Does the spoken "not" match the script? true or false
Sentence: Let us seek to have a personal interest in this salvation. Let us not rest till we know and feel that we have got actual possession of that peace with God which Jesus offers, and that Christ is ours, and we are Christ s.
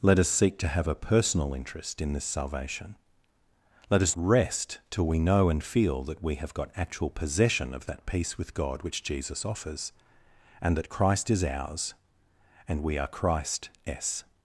false